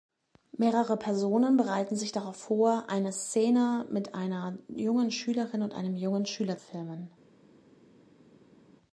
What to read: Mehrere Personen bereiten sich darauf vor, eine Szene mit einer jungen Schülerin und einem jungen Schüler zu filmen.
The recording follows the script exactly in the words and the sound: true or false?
false